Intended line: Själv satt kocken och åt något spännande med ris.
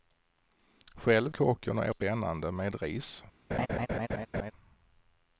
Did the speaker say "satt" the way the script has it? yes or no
no